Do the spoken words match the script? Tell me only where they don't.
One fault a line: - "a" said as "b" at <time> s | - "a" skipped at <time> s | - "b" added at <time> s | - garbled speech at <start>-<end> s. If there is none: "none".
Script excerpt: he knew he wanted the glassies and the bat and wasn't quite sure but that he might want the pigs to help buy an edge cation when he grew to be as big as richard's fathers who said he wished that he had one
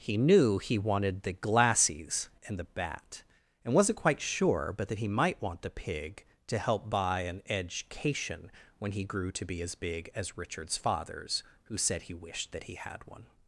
- "pigs" said as "pig" at 5.7 s